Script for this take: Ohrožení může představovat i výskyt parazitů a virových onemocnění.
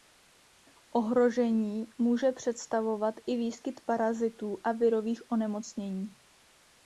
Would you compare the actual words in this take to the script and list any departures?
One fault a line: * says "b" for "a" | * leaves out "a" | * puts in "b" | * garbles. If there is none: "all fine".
all fine